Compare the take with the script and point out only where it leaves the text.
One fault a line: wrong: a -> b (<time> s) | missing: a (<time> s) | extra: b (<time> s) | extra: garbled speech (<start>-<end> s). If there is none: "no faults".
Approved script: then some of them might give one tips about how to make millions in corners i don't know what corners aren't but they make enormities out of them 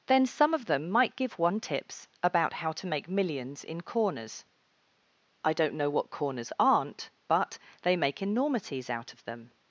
no faults